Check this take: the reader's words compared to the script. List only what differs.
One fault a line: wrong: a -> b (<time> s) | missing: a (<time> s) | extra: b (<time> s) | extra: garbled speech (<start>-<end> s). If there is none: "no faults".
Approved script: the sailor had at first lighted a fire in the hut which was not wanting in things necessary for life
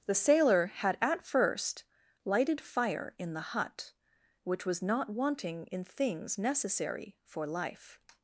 missing: a (2.6 s)